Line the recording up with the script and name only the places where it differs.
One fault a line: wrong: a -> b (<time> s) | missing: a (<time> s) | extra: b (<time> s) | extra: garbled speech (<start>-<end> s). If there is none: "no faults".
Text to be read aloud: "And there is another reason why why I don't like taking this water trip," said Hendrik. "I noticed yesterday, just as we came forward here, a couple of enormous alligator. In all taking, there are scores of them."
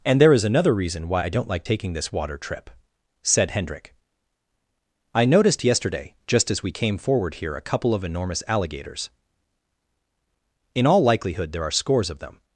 missing: why (1.2 s)
wrong: alligator -> alligators (8.5 s)
wrong: taking -> likelihood (11.0 s)